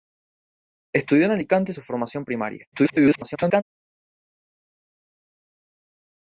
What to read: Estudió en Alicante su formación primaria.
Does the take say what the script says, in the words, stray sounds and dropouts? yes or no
no